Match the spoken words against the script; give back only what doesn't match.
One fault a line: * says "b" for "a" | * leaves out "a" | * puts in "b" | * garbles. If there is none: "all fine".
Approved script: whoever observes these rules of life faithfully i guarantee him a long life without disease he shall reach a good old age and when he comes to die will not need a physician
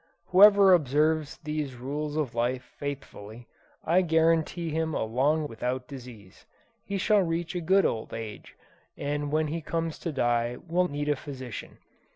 * leaves out "life"
* leaves out "not"